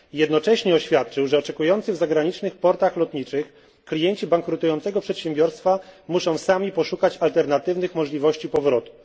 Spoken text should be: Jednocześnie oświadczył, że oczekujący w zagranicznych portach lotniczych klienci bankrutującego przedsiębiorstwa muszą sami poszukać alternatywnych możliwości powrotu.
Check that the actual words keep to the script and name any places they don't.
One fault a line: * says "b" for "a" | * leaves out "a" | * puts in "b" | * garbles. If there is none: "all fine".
all fine